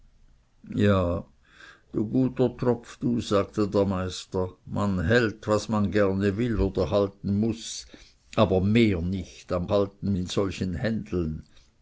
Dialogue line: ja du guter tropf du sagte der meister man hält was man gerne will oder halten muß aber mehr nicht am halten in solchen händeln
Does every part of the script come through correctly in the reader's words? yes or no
yes